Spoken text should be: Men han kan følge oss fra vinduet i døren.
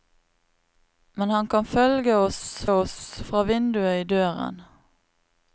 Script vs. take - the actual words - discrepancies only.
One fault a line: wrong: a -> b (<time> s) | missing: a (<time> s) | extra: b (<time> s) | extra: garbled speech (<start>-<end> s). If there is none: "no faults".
extra: oss (2.7 s)